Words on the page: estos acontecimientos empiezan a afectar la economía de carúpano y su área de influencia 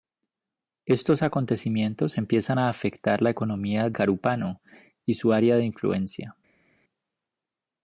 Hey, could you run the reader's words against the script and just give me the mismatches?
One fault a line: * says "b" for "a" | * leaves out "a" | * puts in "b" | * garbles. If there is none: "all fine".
* leaves out "de"